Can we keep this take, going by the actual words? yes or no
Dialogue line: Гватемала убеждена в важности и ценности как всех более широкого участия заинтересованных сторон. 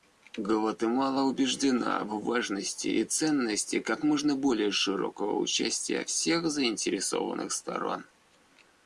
no